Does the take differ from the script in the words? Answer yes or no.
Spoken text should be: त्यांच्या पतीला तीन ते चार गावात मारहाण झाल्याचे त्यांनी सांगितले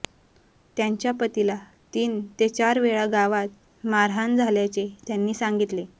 yes